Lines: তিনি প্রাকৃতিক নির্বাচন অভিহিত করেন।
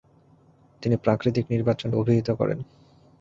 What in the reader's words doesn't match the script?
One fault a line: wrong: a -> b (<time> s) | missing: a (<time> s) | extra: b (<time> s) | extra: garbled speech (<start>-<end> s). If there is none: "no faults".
no faults